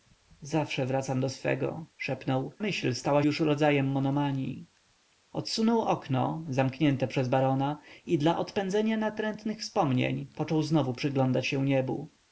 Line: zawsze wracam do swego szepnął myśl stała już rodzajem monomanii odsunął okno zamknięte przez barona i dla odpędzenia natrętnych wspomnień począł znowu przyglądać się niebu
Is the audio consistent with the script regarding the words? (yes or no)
yes